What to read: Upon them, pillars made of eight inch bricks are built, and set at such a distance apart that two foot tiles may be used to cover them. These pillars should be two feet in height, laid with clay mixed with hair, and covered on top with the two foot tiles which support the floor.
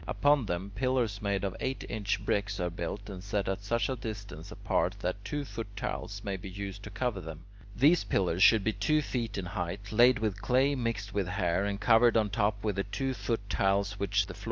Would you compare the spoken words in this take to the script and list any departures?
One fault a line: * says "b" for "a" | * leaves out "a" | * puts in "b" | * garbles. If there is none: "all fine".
* leaves out "support"